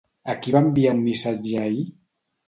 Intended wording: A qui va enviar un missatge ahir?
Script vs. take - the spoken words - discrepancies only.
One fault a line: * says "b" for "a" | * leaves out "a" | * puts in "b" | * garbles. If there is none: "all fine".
all fine